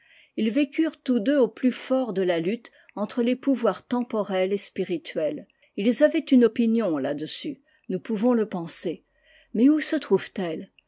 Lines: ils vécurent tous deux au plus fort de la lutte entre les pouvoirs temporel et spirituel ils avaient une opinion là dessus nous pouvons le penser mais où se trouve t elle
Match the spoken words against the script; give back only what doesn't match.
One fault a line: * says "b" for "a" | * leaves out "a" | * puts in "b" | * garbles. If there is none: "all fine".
all fine